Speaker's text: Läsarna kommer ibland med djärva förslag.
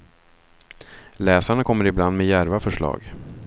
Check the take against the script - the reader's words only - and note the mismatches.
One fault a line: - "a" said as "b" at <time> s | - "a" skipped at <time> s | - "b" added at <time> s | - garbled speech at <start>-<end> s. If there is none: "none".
none